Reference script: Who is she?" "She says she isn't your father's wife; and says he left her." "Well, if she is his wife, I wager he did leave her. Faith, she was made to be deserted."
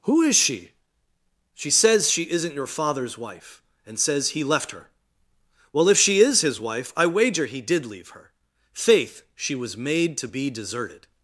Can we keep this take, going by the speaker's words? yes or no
yes